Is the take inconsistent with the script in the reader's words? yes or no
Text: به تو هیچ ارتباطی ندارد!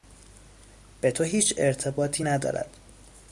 no